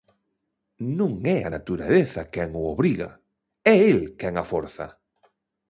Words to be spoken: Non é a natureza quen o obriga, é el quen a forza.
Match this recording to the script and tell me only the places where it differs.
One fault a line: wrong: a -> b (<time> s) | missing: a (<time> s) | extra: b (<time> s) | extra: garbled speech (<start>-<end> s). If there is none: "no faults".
no faults